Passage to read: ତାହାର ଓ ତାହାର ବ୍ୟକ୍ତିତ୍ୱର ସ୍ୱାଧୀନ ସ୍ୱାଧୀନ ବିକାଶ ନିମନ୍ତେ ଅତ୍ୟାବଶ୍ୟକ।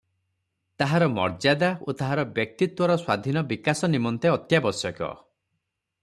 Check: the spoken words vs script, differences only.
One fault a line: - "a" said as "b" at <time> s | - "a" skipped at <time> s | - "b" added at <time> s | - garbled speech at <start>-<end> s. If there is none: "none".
- "ମର୍ଯ୍ୟାଦା" added at 1.1 s
- "ସ୍ୱାଧୀନ" skipped at 3.4 s